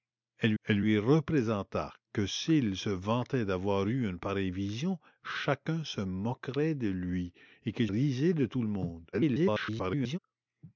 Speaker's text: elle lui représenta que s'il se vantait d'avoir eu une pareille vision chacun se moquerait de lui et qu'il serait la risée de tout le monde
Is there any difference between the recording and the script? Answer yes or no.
yes